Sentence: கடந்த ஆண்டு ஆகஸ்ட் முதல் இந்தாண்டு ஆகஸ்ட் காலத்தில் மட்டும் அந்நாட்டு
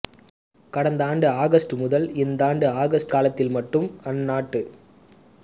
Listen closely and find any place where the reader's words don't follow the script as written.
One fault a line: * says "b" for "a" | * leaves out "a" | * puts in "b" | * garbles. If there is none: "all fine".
all fine